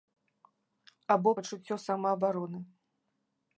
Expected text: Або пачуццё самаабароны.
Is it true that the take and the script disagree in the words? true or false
false